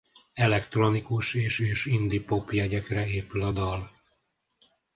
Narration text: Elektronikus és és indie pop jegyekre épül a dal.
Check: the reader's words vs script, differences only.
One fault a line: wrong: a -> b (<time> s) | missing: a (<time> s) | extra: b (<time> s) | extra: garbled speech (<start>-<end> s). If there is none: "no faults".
no faults